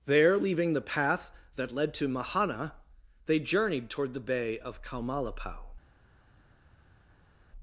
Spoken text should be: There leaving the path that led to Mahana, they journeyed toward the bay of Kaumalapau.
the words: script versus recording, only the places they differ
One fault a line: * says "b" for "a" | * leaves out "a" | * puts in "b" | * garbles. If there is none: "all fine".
all fine